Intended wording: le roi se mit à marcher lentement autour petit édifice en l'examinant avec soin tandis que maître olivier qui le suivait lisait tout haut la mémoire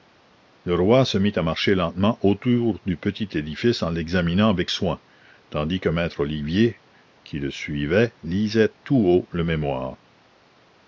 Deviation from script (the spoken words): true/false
true